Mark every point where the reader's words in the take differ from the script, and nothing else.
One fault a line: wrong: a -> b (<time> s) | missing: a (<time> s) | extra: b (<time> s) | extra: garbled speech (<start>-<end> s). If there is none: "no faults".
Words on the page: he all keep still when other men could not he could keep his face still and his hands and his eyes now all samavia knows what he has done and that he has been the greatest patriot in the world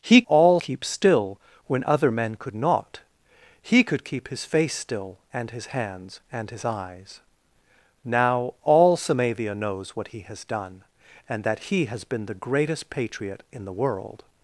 no faults